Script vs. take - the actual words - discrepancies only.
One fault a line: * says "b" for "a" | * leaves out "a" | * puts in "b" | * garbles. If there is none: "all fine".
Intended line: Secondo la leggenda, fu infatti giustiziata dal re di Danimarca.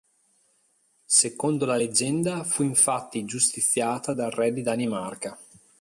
all fine